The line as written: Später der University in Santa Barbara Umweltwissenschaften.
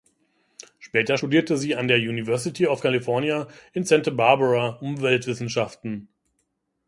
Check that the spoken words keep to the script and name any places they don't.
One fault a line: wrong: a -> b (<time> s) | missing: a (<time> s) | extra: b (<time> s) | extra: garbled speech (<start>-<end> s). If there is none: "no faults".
extra: studierte sie an (1.1 s)
extra: of California (2.7 s)